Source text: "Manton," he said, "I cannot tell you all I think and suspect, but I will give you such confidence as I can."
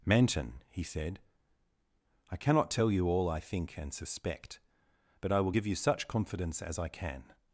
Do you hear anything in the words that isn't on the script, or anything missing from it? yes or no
no